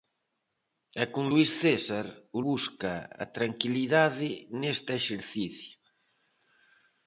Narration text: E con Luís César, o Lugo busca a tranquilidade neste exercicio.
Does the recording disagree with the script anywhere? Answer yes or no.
yes